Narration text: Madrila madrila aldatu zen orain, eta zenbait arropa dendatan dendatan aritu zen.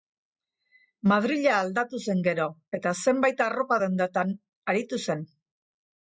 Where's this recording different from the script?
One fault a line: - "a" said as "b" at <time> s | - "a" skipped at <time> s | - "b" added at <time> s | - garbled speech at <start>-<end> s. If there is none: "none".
- "madrila" skipped at 1.5 s
- "orain" said as "gero" at 2.3 s
- "dendatan" skipped at 4.4 s